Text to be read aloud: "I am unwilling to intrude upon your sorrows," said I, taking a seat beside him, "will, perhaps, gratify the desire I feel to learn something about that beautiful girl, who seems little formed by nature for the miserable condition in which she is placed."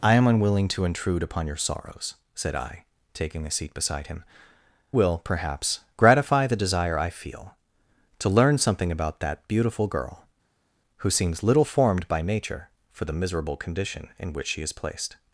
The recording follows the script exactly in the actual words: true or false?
true